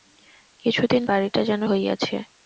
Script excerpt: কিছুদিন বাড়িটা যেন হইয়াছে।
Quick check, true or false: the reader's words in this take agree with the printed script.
true